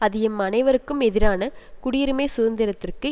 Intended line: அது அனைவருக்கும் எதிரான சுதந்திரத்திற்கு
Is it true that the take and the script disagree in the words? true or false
true